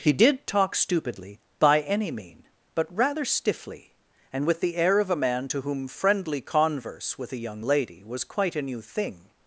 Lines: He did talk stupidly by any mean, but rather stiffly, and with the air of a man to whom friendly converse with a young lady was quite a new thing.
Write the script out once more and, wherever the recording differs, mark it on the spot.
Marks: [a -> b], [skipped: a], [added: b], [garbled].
He did talk stupidly by any mean, but rather stiffly, and with the air of a man to whom friendly converse with a young lady was quite a new thing.